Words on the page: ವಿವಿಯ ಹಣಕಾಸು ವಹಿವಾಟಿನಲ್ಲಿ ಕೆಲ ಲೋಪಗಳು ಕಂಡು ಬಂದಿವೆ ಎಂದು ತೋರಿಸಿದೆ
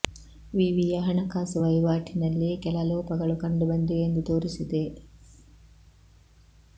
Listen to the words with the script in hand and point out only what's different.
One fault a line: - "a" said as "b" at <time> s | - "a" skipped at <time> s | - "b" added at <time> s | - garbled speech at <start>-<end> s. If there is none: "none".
none